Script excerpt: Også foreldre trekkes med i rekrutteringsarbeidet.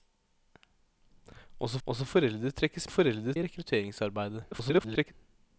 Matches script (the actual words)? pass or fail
fail